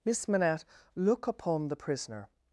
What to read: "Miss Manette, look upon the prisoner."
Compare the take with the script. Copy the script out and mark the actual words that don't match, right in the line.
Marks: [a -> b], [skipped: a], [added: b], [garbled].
"Miss Manette, look upon the prisoner."